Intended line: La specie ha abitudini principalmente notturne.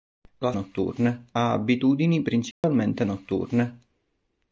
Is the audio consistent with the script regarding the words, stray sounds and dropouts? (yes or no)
no